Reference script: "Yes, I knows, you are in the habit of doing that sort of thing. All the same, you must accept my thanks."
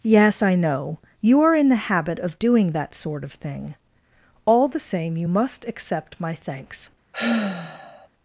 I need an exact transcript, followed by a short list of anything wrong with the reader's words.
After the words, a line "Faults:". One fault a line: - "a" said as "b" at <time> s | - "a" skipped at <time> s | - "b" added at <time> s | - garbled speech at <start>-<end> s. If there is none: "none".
"Yes, I know, you are in the habit of doing that sort of thing. All the same, you must accept my thanks."
Faults:
- "knows" said as "know" at 0.6 s